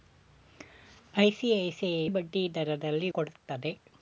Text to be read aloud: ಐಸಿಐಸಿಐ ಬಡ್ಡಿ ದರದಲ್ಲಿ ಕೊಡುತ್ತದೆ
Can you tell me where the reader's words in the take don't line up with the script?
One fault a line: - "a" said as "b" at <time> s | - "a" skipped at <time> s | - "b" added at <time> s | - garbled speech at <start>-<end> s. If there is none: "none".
none